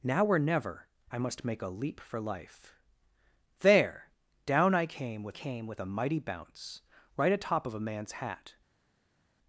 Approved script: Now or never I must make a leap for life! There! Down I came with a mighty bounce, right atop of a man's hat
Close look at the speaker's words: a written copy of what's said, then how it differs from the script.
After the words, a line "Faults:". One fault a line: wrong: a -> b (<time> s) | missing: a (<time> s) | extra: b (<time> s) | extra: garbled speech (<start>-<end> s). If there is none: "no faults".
Now or never I must make a leap for life! There! Down I came with came with a mighty bounce, right atop of a man's hat
Faults:
extra: came with (5.3 s)